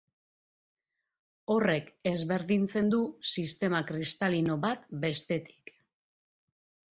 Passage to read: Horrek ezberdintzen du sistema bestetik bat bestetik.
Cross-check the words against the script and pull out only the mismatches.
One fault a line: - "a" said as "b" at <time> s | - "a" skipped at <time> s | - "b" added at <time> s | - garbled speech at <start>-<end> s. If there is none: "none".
- "bestetik" said as "kristalino" at 3.9 s